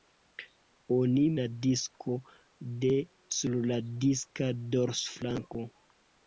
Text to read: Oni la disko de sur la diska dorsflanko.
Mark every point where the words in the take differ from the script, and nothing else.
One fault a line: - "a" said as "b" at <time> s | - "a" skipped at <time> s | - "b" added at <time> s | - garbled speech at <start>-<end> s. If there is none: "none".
none